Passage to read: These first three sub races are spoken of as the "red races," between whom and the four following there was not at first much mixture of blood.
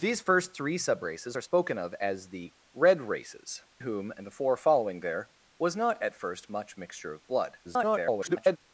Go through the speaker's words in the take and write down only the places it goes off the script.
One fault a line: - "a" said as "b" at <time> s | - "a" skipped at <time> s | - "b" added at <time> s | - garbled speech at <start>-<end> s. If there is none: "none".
- "between" skipped at 3.6 s
- garbled speech at 7.6-8.6 s